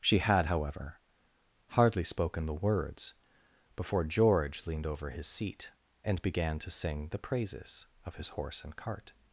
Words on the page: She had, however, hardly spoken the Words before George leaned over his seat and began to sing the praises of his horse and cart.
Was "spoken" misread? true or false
false